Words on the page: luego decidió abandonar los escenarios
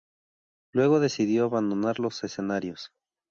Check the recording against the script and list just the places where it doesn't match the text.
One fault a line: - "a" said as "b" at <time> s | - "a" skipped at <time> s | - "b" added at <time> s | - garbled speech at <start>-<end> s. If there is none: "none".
none